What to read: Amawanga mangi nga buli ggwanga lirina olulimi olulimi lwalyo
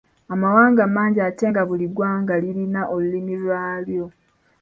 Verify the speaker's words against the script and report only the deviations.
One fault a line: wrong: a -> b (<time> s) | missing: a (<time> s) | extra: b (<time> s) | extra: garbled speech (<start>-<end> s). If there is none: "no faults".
extra: ate (1.3 s)
missing: olulimi (3.3 s)